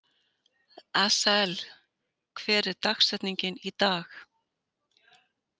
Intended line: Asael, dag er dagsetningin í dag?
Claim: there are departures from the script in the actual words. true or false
true